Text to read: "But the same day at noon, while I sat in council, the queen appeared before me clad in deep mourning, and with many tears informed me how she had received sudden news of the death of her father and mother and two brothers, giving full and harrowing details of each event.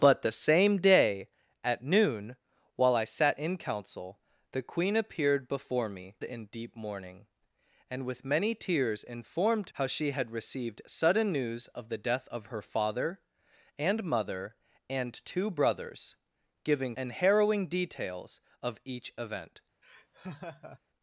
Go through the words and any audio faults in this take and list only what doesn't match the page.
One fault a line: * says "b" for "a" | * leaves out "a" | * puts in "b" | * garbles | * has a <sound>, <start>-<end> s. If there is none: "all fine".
* leaves out "clad"
* leaves out "me"
* leaves out "full"
* has a laugh, 19.8-20.8 s